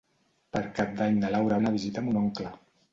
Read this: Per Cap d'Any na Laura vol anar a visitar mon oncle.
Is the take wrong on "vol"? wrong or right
wrong